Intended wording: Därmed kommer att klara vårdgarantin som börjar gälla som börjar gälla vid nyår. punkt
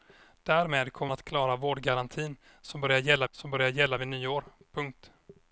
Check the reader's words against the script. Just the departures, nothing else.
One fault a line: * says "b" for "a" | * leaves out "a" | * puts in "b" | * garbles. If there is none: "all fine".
all fine